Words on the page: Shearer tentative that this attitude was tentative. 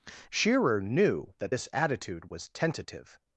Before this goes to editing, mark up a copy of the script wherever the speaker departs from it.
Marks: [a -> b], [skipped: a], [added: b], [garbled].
Shearer [tentative -> knew] that this attitude was tentative.